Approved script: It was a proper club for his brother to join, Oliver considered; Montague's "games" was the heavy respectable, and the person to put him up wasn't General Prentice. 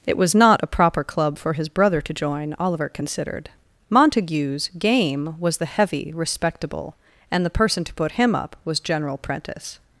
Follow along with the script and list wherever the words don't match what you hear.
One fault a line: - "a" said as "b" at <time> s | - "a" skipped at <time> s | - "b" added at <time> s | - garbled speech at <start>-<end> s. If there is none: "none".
- "not" added at 0.3 s
- "games" said as "game" at 4.8 s
- "wasn't" said as "was" at 8.7 s